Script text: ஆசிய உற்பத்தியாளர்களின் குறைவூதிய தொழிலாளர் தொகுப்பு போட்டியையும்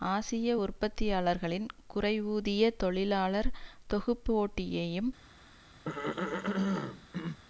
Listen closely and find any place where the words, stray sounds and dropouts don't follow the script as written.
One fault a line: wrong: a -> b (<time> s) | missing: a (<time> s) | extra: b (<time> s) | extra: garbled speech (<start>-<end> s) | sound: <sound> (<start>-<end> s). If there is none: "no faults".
sound: throat clearing (5.8-7.4 s)